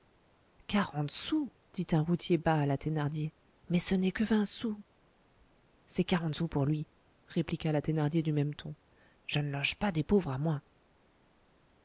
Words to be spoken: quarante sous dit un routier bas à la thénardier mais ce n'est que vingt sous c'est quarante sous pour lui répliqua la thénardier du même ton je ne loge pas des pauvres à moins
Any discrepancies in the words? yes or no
no